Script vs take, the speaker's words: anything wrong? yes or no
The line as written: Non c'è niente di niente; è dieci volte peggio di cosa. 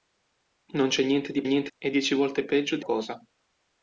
no